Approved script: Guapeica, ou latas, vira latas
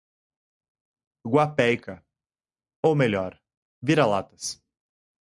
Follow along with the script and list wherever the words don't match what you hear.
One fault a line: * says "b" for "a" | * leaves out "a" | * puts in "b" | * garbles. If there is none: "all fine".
* says "melhor" for "latas"